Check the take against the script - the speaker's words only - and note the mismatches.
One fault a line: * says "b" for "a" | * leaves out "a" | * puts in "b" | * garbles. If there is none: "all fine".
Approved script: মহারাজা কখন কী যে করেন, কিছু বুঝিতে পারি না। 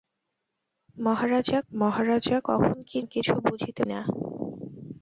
* puts in "মহারাজা"
* leaves out "যে করেন"
* leaves out "পারি"